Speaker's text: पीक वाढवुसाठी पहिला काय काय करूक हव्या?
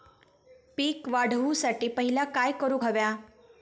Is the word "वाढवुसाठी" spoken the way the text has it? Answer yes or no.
yes